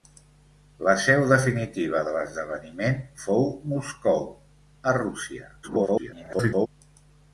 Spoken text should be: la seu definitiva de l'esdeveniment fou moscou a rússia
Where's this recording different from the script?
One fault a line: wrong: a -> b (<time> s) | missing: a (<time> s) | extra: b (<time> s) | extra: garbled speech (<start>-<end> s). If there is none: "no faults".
extra: garbled speech (5.6-6.7 s)